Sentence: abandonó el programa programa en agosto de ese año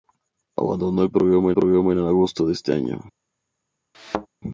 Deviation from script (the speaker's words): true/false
false